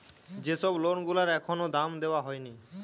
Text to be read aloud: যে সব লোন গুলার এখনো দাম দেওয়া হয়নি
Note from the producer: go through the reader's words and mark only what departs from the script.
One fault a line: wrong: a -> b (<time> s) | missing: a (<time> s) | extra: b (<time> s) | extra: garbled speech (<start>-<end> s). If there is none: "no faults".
no faults